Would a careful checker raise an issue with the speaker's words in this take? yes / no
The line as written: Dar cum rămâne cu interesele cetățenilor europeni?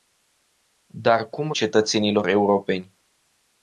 yes